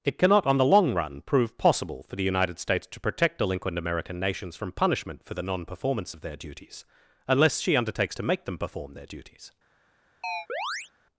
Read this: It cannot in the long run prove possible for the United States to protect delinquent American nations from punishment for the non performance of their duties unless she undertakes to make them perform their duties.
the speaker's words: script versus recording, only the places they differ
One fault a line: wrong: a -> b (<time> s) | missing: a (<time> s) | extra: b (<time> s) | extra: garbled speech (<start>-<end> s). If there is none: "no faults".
wrong: in -> on (0.5 s)